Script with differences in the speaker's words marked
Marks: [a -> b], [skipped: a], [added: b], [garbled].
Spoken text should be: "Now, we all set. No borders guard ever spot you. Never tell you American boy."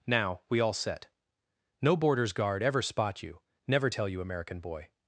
"Now, we all set. No borders guard ever spot you. Never tell you American boy."